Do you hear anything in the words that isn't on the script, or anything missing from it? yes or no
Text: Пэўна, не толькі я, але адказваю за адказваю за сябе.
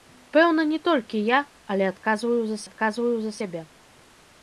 no